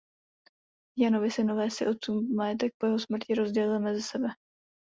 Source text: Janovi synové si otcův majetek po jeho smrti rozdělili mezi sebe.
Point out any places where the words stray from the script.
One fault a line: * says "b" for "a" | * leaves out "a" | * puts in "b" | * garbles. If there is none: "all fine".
all fine